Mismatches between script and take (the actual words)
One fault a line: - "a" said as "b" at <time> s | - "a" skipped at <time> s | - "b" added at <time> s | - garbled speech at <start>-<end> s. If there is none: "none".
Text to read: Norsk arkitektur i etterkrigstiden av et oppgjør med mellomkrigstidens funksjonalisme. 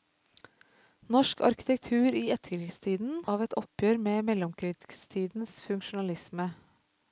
none